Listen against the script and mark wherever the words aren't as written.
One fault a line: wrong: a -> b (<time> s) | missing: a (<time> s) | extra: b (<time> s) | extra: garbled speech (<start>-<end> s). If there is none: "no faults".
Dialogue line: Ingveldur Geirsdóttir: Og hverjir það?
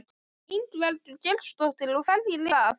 no faults